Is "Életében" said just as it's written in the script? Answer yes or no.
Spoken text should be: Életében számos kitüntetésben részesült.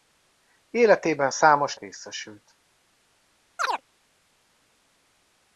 yes